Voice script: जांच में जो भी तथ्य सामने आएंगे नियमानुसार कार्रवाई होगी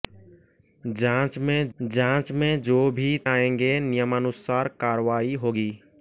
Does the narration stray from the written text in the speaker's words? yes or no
yes